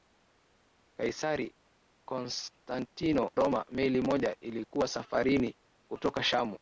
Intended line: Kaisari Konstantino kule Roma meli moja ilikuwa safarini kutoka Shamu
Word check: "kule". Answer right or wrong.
wrong